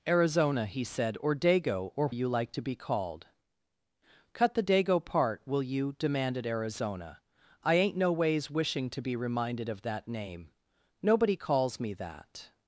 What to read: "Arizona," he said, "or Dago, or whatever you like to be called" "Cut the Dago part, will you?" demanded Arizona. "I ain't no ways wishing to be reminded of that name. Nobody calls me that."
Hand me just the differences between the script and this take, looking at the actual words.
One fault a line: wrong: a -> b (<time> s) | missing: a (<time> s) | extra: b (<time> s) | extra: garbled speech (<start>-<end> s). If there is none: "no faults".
missing: whatever (2.1 s)